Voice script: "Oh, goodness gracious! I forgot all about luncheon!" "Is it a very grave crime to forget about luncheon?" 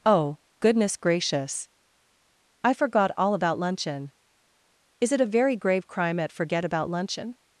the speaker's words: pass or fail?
fail